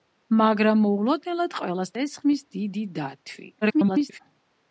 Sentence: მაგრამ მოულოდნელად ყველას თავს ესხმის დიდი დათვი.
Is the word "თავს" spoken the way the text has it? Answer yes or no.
no